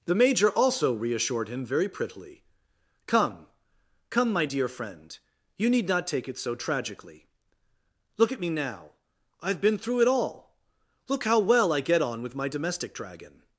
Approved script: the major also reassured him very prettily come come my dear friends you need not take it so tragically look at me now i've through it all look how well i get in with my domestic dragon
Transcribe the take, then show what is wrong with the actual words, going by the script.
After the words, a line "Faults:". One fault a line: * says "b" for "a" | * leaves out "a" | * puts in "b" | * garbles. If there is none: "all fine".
the major also reassured him very prettily come come my dear friend you need not take it so tragically look at me now i've been through it all look how well i get on with my domestic dragon
Faults:
* says "friend" for "friends"
* puts in "been"
* says "on" for "in"